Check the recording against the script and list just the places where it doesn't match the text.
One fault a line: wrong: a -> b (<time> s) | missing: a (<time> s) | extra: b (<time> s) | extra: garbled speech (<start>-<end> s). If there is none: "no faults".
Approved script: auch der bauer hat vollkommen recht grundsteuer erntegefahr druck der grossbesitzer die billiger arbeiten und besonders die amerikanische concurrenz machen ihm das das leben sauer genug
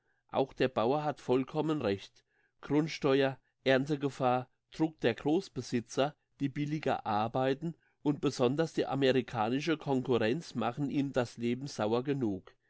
missing: das (11.4 s)